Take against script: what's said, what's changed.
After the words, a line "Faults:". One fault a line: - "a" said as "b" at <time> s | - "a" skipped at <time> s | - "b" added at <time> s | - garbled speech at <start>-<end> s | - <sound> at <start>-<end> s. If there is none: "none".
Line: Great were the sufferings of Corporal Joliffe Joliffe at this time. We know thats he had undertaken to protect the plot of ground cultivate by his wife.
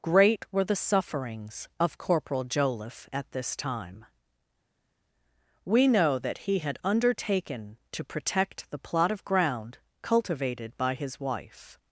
Great were the sufferings of Corporal Joliffe at this time. We know that he had undertaken to protect the plot of ground cultivated by his wife.
Faults:
- "Joliffe" skipped at 3.1 s
- "thats" said as "that" at 6.2 s
- "cultivate" said as "cultivated" at 10.0 s